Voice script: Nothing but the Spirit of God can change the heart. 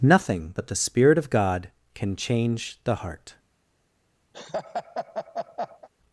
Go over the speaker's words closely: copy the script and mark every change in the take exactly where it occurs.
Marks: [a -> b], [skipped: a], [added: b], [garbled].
Nothing but the Spirit of God can change the heart.